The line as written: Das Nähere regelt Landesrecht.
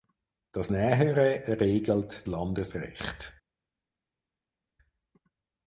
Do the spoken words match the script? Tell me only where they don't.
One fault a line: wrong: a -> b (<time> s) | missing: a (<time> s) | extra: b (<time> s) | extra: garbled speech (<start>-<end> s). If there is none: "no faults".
no faults